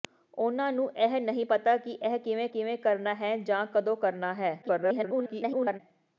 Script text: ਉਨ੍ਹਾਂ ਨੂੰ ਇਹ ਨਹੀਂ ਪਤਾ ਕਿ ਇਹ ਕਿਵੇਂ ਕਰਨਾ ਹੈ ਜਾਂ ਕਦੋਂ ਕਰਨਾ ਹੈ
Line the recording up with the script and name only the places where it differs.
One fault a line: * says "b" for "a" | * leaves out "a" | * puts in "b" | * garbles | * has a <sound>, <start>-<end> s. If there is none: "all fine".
* puts in "ਕਿਵੇਂ"
* garbles